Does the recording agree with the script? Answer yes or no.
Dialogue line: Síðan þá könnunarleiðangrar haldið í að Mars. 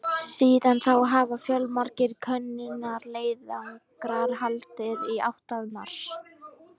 no